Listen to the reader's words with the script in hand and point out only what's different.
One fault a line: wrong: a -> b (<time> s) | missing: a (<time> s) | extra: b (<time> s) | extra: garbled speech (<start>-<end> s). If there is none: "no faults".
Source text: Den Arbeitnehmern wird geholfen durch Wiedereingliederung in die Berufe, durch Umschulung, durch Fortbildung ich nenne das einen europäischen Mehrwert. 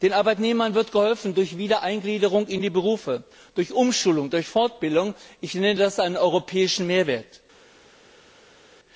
no faults